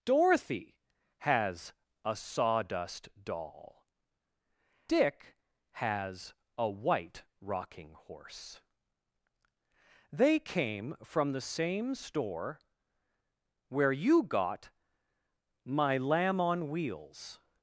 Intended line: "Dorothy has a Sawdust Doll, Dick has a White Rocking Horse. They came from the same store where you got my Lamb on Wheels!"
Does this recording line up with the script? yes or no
yes